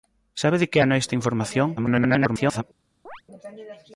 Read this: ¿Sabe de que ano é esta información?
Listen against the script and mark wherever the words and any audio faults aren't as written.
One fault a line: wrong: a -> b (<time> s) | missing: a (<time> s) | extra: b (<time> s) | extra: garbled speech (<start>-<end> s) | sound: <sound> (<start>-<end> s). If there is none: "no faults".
extra: garbled speech (1.8-2.6 s)
sound: chirp (3.1-3.2 s)